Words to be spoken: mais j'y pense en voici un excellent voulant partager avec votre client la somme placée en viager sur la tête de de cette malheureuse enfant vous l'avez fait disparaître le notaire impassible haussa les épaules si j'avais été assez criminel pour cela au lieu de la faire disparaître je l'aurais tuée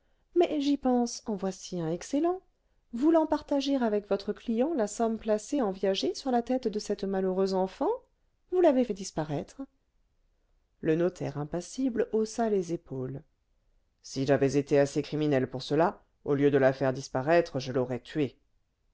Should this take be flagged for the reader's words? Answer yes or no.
yes